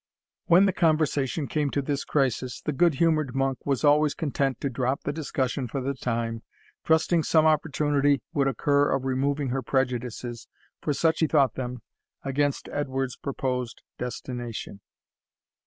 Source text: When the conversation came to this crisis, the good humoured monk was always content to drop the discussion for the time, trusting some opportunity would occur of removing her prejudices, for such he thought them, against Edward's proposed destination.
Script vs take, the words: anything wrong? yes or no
no